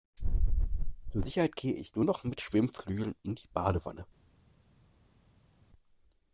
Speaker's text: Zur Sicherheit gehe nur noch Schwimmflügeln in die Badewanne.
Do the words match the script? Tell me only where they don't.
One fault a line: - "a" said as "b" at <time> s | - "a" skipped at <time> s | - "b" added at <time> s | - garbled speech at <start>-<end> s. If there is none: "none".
- "ich" added at 1.7 s
- "mit" added at 2.2 s